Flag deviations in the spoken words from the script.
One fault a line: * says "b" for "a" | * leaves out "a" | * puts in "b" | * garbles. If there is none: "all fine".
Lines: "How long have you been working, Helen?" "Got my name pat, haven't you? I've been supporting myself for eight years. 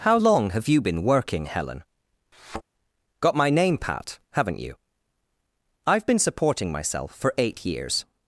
all fine